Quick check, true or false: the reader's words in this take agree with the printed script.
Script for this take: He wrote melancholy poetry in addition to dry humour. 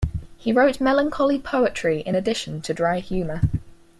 true